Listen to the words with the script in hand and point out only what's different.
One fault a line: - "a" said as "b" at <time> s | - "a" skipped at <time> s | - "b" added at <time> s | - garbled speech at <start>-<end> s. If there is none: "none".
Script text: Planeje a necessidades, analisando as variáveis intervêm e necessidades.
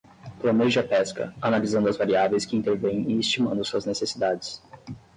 - "necessidades" said as "pesca" at 0.8 s
- "que" added at 2.4 s
- "estimando suas" added at 3.2 s